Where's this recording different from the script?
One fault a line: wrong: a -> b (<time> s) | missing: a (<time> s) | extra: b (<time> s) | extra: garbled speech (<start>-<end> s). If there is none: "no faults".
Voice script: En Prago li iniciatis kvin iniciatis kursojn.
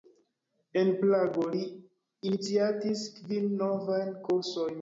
wrong: iniciatis -> novajn (3.7 s)